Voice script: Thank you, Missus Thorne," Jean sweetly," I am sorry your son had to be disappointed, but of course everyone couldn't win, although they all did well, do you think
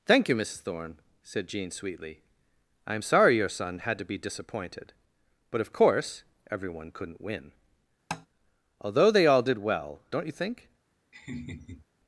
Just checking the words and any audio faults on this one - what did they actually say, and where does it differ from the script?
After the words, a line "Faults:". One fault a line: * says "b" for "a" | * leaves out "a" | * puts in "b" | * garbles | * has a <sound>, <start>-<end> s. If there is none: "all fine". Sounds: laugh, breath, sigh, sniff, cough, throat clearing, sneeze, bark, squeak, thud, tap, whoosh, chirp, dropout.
Thank you, Missus Thorne," said Jean sweetly," I am sorry your son had to be disappointed, but of course everyone couldn't win, although they all did well, don't you think
Faults:
* puts in "said"
* has a tap, 8.1-8.3 s
* says "don't" for "do"
* has a laugh, 11.1-11.9 s